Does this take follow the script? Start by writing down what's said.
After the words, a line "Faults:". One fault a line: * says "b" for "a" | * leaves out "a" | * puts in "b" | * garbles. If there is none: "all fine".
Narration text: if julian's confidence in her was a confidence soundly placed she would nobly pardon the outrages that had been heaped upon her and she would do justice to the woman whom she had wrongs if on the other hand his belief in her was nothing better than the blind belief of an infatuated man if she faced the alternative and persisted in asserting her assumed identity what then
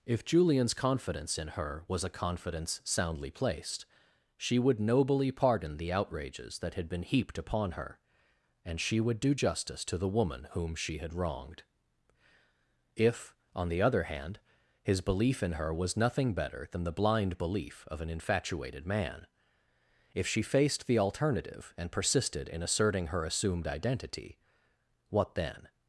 if julian's confidence in her was a confidence soundly placed she would nobly pardon the outrages that had been heaped upon her and she would do justice to the woman whom she had wronged if on the other hand his belief in her was nothing better than the blind belief of an infatuated man if she faced the alternative and persisted in asserting her assumed identity what then
Faults:
* says "wronged" for "wrongs"